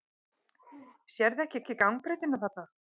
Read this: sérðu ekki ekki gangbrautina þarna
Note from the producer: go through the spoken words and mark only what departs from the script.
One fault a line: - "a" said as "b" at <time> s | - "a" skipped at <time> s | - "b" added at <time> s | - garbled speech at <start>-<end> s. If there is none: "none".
none